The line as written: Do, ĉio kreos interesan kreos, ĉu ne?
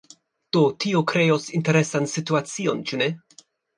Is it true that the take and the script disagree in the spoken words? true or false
true